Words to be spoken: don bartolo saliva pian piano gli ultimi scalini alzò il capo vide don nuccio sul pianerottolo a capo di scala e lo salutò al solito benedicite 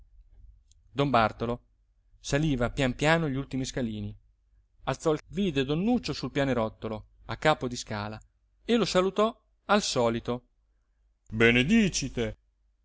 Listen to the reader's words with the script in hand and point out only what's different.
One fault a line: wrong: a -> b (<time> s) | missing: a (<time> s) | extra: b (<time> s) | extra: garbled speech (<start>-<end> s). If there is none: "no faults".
missing: capo (5.2 s)